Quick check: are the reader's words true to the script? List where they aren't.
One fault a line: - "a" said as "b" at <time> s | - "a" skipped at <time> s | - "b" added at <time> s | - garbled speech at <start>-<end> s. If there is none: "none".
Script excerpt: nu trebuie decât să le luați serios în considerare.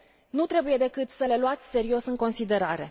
none